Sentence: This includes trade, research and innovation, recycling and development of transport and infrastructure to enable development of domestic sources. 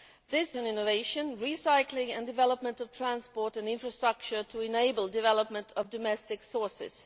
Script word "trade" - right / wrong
wrong